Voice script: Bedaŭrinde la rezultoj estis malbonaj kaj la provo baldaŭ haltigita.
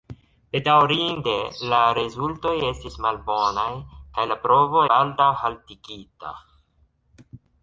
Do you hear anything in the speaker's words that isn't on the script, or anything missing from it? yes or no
no